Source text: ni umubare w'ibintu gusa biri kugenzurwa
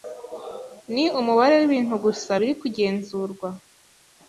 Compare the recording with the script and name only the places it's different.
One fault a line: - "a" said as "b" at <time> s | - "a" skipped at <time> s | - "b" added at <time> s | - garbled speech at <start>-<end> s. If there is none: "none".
none